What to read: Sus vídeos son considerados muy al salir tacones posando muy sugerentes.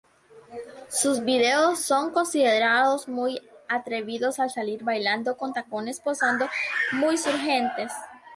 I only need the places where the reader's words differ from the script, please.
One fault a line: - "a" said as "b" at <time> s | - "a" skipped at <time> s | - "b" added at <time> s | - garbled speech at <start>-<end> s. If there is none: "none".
- "atrevidos" added at 3.7 s
- "bailando con" added at 4.8 s